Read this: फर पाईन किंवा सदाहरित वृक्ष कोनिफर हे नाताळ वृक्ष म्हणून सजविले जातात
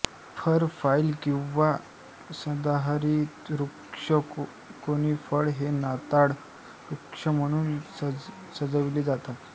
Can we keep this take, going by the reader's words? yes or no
yes